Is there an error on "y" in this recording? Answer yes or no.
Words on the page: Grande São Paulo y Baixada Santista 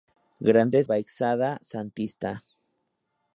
yes